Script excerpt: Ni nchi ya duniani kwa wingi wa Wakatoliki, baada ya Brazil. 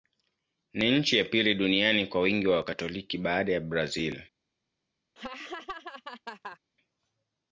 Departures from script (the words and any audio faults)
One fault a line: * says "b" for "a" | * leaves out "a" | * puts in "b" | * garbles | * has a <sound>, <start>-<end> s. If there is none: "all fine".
* puts in "pili"
* has a laugh, 5.2-6.6 s